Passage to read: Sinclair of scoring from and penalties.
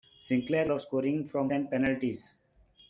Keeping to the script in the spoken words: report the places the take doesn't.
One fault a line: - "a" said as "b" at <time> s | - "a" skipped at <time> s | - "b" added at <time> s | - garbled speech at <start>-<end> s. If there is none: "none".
none